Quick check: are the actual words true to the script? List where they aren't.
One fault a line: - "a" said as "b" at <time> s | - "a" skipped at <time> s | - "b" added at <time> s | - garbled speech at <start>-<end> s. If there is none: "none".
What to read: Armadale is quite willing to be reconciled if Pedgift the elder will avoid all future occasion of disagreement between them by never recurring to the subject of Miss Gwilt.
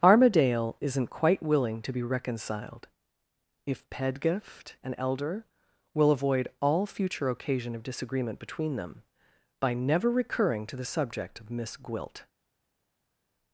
- "is" said as "isn't" at 0.8 s
- "the" said as "an" at 4.8 s